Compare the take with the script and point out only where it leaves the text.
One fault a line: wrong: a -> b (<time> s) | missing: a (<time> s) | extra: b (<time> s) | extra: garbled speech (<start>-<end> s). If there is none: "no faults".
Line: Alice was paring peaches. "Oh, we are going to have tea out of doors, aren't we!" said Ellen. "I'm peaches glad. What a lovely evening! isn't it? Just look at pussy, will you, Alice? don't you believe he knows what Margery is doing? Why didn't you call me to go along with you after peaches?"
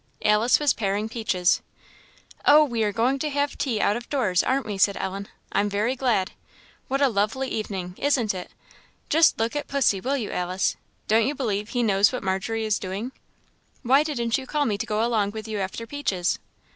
wrong: peaches -> very (5.7 s)